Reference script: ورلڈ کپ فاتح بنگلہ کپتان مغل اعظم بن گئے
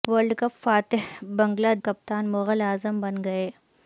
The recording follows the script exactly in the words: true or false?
true